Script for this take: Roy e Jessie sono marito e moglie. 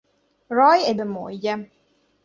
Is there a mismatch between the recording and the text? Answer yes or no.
yes